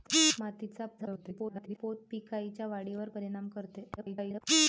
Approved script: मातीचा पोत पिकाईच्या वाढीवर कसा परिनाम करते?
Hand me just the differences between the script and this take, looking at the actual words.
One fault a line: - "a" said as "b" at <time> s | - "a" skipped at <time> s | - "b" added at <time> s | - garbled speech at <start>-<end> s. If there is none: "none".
- garbled speech at 1.0-1.8 s
- "कसा" skipped at 3.1 s
- garbled speech at 4.0-4.4 s